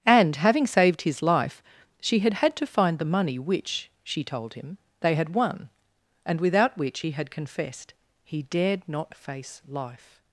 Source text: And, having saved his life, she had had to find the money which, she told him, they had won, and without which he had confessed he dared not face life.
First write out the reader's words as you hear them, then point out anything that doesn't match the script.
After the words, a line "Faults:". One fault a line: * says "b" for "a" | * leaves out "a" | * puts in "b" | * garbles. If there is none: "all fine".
And, having saved his life, she had had to find the money which, she told him, they had won, and without which he had confessed he dared not face life.
Faults:
all fine